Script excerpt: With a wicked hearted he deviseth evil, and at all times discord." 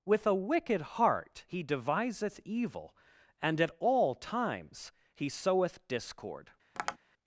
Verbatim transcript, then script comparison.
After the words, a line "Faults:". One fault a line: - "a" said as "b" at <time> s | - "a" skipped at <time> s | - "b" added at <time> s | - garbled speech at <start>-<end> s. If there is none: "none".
With a wicked heart he deviseth evil, and at all times he soweth discord."
Faults:
- "hearted" said as "heart" at 0.8 s
- "he soweth" added at 5.1 s